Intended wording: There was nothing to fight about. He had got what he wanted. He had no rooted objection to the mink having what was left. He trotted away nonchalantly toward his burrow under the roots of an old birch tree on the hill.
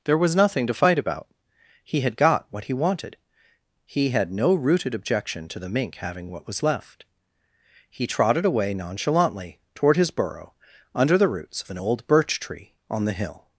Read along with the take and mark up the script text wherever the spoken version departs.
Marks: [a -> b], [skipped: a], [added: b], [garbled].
There was nothing to fight about. He had got what he wanted. He had no rooted objection to the mink having what was left. He trotted away nonchalantly toward his burrow under the roots of an old birch tree on the hill.